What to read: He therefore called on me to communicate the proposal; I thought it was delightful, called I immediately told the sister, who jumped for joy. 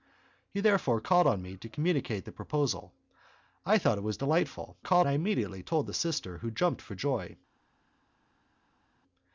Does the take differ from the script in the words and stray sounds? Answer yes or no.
no